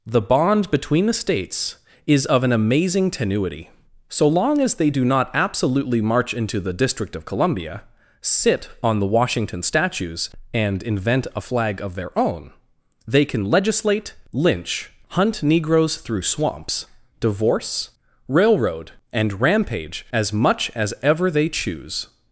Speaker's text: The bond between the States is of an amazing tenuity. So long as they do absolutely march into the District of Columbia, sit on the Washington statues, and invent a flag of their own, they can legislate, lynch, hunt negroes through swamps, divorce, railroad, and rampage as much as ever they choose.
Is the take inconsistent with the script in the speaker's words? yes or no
yes